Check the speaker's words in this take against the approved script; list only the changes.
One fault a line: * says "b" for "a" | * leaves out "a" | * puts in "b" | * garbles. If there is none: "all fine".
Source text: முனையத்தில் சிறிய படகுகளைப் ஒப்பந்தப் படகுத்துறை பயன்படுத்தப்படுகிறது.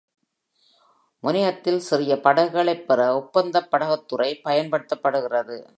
* puts in "பெற"